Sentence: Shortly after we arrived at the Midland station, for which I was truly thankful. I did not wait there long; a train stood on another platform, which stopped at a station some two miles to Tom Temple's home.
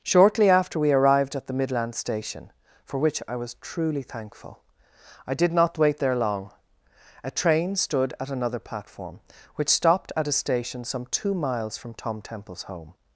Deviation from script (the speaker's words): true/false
true